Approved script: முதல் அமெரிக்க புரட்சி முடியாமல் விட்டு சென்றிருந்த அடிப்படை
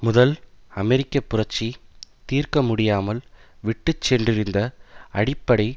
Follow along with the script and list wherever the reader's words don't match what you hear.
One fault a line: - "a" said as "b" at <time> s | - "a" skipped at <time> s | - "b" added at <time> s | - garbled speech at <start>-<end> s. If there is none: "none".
- "தீர்க்க" added at 2.2 s